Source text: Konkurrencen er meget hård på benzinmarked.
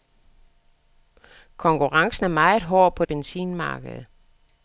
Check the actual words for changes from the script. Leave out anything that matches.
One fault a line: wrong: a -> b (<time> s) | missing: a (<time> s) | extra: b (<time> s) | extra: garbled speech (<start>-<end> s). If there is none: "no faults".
no faults